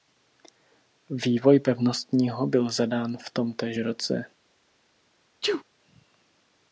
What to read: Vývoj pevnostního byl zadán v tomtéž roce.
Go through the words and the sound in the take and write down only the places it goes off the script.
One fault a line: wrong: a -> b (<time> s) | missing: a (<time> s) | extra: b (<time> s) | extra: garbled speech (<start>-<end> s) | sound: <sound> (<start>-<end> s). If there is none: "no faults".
sound: sneeze (5.4-5.6 s)